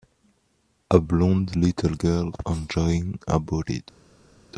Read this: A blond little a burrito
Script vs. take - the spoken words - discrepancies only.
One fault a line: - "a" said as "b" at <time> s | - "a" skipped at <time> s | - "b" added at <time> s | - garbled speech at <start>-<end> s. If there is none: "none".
- "girl enjoying" added at 1.9 s